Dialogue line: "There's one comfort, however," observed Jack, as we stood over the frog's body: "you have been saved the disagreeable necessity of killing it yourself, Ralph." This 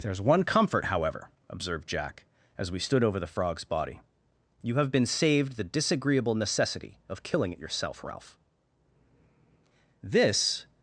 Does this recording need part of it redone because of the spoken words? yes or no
no